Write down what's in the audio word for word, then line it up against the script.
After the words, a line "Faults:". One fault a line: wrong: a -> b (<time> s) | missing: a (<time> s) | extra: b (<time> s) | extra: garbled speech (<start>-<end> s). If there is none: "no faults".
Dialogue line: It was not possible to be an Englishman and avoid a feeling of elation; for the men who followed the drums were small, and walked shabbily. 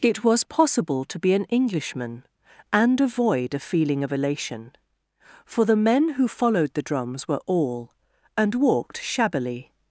It was possible to be an Englishman and avoid a feeling of elation; for the men who followed the drums were all, and walked shabbily.
Faults:
missing: not (0.4 s)
wrong: small -> all (7.5 s)